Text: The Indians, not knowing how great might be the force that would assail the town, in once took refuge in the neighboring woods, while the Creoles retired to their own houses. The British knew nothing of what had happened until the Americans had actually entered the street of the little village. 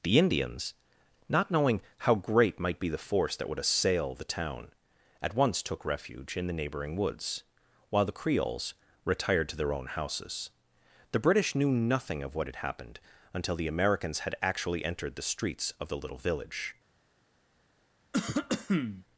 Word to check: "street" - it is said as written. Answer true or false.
false